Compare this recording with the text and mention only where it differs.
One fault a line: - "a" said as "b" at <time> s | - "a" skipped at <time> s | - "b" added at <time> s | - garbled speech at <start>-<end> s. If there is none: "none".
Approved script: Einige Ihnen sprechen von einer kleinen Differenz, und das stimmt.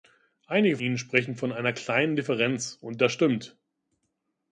none